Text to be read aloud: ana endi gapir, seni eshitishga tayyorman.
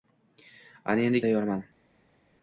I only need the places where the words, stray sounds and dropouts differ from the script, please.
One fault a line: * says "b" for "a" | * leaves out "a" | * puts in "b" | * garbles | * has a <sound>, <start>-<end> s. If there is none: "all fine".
* leaves out "gapir seni eshitishga"